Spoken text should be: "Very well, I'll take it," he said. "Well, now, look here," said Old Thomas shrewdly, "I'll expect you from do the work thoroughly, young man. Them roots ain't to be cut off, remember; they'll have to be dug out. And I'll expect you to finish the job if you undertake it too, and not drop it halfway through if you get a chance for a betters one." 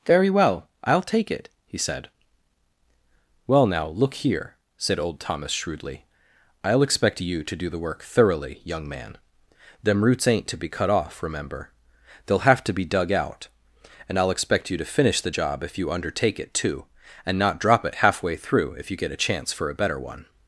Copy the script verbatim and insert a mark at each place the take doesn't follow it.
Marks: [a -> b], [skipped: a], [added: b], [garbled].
"Very well, I'll take it," he said. "Well, now, look here," said Old Thomas shrewdly, "I'll expect you [from -> to] do the work thoroughly, young man. Them roots ain't to be cut off, remember; they'll have to be dug out. And I'll expect you to finish the job if you undertake it too, and not drop it halfway through if you get a chance for a [betters -> better] one."